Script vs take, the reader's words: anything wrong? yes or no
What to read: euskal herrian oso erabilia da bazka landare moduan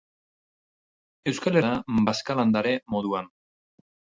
yes